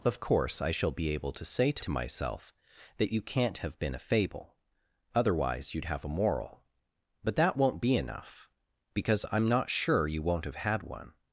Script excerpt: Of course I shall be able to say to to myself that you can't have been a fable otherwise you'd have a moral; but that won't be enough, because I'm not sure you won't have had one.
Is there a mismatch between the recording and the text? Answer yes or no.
no